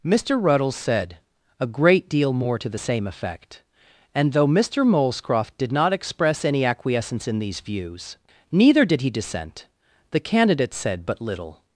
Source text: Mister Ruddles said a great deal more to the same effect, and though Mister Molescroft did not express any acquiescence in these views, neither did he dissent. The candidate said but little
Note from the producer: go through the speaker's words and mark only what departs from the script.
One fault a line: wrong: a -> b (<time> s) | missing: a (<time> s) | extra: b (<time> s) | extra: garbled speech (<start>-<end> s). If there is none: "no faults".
no faults